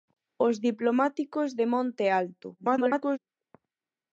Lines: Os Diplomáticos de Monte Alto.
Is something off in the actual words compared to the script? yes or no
yes